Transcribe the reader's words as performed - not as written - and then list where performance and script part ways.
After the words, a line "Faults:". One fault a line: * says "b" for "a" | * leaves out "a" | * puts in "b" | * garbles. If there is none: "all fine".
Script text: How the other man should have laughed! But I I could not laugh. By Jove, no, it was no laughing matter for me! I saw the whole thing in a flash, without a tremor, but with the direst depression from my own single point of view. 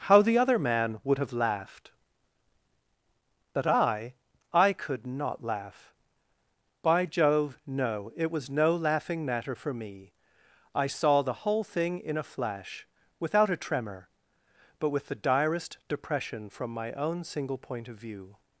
How the other man would have laughed! But I I could not laugh. By Jove, no, it was no laughing matter for me! I saw the whole thing in a flash, without a tremor, but with the direst depression from my own single point of view.
Faults:
* says "would" for "should"